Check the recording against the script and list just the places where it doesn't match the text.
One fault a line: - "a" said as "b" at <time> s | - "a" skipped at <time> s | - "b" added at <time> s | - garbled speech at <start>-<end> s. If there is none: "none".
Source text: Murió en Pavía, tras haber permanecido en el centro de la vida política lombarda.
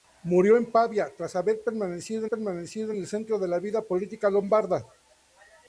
- "permanecido" added at 2.3 s